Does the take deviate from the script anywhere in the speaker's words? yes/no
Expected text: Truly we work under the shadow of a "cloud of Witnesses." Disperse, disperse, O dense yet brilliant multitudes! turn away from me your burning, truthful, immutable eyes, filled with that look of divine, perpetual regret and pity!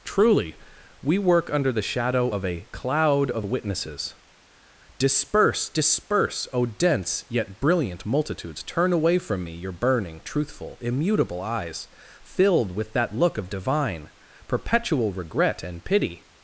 no